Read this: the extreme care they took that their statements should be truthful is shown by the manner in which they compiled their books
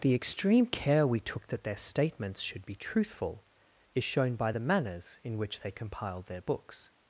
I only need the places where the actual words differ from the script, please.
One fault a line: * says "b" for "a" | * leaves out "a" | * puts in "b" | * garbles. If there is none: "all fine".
* says "we" for "they"
* says "manners" for "manner"